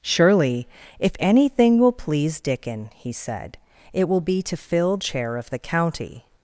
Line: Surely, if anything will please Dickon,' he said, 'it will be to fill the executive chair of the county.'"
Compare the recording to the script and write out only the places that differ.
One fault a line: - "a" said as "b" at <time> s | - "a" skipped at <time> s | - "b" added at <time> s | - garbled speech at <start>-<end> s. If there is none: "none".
- "the executive" skipped at 5.0 s